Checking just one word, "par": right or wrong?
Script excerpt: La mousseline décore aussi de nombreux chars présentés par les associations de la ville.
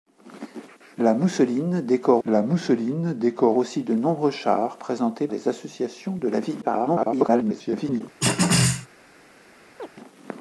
wrong